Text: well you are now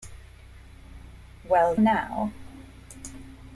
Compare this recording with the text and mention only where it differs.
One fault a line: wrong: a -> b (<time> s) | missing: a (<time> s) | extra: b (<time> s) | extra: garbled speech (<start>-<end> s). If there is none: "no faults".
missing: you are (1.8 s)